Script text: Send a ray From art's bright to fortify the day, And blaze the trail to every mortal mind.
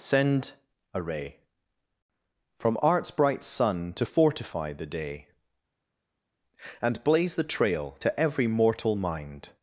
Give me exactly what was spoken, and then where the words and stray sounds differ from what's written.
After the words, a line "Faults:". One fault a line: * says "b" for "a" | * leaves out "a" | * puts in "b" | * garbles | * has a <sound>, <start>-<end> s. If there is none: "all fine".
Send a ray From art's bright sun to fortify the day, And blaze the trail to every mortal mind.
Faults:
* puts in "sun"